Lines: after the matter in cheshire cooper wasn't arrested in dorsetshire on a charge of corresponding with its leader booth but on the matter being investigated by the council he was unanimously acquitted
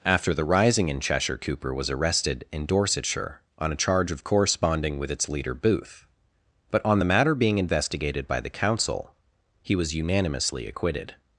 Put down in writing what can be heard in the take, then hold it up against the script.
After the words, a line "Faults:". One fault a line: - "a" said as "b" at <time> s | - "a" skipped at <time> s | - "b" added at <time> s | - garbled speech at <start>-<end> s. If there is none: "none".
after the rising in cheshire cooper was arrested in dorsetshire on a charge of corresponding with its leader booth but on the matter being investigated by the council he was unanimously acquitted
Faults:
- "matter" said as "rising" at 0.5 s
- "wasn't" said as "was" at 1.8 s